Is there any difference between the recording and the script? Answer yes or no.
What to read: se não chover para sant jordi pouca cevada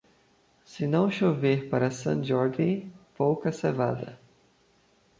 no